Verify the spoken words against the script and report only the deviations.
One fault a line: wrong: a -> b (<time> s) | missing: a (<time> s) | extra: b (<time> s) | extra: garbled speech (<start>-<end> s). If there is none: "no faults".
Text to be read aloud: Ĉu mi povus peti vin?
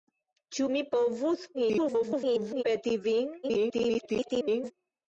extra: garbled speech (1.5-2.6 s)
extra: garbled speech (3.4-4.7 s)